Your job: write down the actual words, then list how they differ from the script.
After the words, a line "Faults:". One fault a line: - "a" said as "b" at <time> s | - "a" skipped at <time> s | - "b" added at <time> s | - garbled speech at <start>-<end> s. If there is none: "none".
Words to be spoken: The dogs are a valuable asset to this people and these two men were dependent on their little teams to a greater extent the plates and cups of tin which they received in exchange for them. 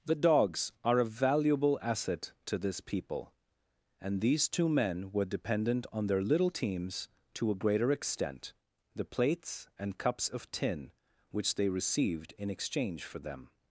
The dogs are a valuable asset to this people and these two men were dependent on their little teams to a greater extent the plates and cups of tin which they received in exchange for them.
Faults:
none